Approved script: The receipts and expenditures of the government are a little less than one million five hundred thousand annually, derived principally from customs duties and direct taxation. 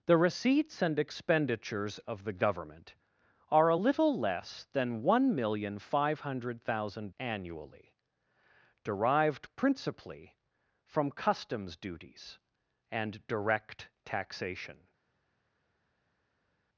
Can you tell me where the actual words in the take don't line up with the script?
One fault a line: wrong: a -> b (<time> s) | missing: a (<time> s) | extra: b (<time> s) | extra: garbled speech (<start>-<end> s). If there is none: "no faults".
no faults